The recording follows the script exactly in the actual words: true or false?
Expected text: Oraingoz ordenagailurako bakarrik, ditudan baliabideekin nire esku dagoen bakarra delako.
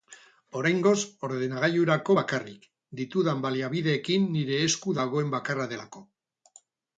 true